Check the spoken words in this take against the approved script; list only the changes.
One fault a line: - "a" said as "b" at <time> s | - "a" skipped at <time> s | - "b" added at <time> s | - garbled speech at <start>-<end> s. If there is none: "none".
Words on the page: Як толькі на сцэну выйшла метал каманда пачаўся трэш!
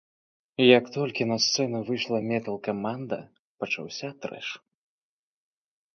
none